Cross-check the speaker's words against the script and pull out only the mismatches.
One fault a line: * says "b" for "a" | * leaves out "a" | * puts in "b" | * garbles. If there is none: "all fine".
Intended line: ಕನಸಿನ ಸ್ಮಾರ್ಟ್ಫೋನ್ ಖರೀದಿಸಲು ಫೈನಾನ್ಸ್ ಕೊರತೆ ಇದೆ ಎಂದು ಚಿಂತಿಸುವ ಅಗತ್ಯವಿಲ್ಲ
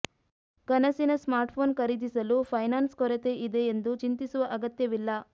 all fine